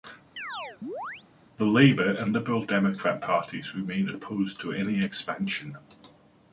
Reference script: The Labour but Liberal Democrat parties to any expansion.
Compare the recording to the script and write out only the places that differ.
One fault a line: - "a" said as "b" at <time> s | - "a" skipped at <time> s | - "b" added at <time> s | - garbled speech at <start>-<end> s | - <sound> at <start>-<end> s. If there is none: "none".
- chirp at 0.4-1.2 s
- "but" said as "and" at 2.1 s
- "remain opposed" added at 3.7 s